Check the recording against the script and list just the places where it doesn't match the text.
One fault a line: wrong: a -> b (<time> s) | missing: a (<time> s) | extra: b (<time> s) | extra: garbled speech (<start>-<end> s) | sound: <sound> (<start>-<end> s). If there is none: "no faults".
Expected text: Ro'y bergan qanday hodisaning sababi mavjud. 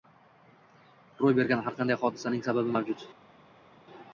extra: har (1.7 s)